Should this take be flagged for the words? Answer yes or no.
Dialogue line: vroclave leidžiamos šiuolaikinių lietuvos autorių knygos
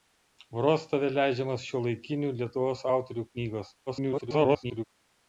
yes